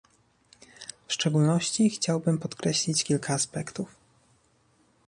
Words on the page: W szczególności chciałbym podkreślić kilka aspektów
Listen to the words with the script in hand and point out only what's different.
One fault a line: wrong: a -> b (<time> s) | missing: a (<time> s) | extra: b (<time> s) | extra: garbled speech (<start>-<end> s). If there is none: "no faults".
no faults